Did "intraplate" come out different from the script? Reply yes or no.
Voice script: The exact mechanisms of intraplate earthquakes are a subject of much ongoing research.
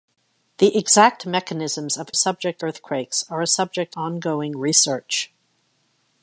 yes